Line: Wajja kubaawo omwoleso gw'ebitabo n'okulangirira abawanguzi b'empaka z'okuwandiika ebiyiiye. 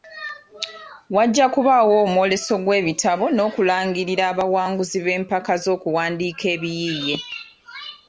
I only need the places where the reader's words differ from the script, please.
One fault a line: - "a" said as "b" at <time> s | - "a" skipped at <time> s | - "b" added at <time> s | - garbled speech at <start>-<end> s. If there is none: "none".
none